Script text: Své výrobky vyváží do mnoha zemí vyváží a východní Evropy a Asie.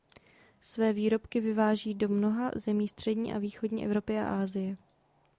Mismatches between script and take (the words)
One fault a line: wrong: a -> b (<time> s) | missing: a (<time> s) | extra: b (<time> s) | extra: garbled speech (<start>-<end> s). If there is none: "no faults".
wrong: vyváží -> střední (2.9 s)